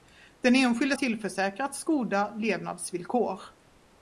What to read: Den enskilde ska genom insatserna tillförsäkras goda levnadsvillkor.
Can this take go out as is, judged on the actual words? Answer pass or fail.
fail